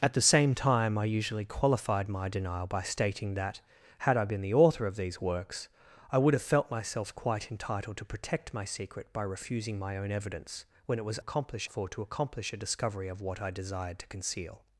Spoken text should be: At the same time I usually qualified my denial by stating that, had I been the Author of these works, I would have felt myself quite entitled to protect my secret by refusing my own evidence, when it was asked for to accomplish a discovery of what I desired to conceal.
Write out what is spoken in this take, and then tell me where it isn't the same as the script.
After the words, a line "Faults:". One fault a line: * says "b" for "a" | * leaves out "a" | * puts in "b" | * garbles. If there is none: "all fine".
At the same time I usually qualified my denial by stating that, had I been the Author of these works, I would have felt myself quite entitled to protect my secret by refusing my own evidence, when it was accomplish for to accomplish a discovery of what I desired to conceal.
Faults:
* says "accomplish" for "asked"